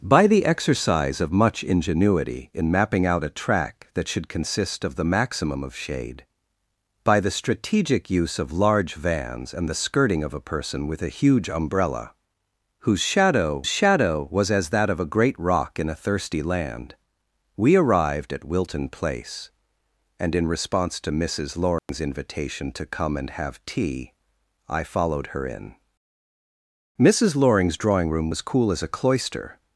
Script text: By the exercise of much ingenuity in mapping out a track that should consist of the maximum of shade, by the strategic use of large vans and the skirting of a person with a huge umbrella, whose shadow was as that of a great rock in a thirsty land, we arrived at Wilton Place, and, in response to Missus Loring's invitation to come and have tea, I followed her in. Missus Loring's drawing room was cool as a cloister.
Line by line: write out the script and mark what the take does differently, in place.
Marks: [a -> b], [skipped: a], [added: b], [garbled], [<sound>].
By the exercise of much ingenuity in mapping out a track that should consist of the maximum of shade, by the strategic use of large vans and the skirting of a person with a huge umbrella, whose shadow [added: shadow] was as that of a great rock in a thirsty land, we arrived at Wilton Place, and, in response to Missus Loring's [dropout] invitation to come and have tea, I followed her in. Missus Loring's drawing room was cool as a cloister.